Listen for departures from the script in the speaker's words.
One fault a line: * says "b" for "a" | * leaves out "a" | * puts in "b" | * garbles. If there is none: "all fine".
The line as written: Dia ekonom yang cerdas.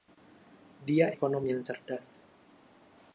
all fine